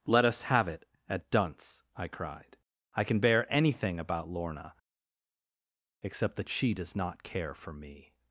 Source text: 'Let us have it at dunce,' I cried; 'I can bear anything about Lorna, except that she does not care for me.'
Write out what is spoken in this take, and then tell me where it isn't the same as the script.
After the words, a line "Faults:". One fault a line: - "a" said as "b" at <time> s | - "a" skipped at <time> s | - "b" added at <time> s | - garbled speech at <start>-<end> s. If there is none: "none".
'Let us have it at dunce,' I cried; 'I can bear anything about Lorna, except that she does not care for me.'
Faults:
none